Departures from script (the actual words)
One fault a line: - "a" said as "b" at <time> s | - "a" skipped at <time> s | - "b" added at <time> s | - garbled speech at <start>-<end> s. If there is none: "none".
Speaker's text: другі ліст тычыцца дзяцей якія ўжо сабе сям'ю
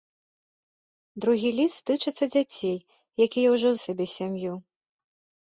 none